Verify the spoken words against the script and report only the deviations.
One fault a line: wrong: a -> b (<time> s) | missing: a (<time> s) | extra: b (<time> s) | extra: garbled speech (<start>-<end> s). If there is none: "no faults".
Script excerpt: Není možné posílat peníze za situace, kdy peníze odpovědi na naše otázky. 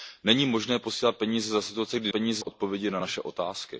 no faults